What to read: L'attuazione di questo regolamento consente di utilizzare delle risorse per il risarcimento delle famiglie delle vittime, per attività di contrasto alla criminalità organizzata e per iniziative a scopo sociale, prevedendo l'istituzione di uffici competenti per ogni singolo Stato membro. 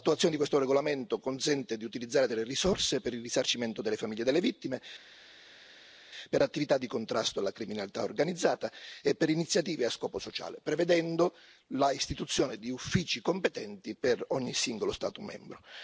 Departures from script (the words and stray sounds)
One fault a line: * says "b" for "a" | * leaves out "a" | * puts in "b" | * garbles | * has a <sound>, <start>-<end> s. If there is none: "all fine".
all fine